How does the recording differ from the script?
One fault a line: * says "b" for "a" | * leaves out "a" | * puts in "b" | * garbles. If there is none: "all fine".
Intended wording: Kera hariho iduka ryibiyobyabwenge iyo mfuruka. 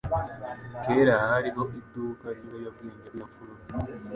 all fine